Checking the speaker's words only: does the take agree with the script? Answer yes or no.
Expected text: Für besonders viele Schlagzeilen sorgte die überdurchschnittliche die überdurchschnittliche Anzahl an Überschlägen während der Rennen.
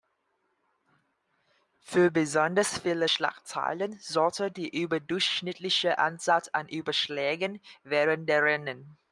no